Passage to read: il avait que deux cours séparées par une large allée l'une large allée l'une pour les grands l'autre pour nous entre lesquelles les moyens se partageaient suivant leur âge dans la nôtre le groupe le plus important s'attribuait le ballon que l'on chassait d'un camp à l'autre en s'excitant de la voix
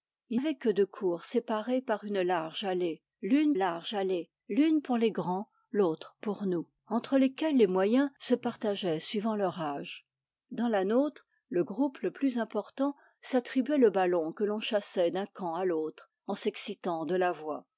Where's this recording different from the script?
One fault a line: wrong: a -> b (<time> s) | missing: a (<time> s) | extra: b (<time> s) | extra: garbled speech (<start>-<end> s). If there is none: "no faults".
no faults